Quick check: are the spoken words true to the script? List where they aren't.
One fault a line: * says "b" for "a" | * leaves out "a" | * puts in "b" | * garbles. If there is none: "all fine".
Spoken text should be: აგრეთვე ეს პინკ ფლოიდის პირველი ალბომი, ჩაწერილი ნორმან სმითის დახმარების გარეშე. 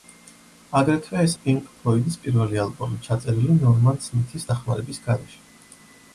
all fine